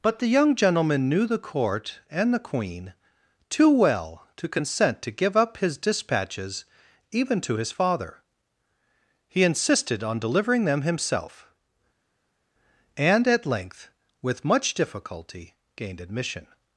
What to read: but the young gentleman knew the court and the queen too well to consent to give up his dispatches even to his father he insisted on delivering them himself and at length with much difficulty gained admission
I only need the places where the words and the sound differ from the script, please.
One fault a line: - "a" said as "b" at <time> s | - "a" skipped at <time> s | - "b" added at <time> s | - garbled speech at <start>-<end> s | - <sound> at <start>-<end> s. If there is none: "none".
none